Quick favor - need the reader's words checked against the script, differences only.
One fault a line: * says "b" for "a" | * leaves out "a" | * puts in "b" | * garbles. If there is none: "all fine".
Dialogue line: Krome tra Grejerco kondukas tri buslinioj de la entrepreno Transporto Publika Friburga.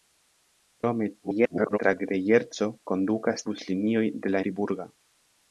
* garbles
* leaves out "tri"
* leaves out "entrepreno Transporto Publika"